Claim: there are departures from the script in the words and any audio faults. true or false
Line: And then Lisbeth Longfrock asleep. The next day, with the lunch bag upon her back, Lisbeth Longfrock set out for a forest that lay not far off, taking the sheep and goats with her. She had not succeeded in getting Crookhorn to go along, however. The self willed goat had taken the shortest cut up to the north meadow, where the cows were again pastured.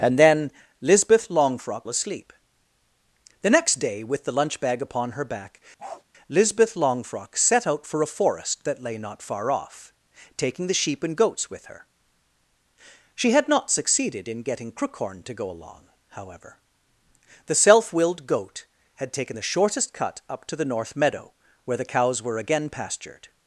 true